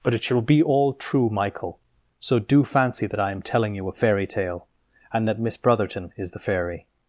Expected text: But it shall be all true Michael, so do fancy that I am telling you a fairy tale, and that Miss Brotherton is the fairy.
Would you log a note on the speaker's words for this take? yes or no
no